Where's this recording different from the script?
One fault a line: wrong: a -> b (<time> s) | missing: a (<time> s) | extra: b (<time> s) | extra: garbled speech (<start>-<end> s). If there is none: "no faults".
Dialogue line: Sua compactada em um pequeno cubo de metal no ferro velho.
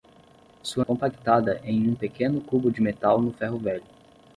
no faults